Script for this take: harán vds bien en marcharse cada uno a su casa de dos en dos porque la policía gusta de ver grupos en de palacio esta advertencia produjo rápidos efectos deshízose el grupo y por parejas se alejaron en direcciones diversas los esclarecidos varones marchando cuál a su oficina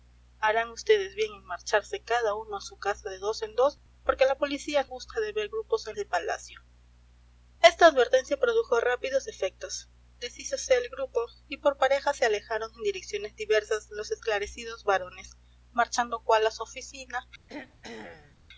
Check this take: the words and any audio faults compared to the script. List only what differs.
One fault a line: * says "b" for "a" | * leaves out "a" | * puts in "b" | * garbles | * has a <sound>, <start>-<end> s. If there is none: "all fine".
* has a throat clearing, 17.5-18.4 s